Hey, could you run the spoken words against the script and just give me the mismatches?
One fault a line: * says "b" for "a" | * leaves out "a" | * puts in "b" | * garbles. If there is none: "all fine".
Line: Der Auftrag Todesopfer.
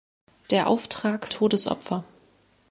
all fine